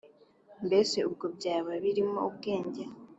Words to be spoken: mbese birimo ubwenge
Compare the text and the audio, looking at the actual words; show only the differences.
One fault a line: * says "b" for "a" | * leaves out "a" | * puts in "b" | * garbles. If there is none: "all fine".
* puts in "ubwo byaba"